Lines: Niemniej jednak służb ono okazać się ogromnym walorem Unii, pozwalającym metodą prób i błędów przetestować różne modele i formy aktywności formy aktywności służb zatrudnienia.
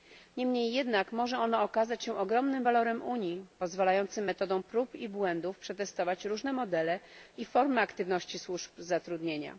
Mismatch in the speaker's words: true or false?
true